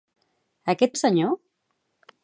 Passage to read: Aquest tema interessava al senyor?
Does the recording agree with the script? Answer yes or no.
no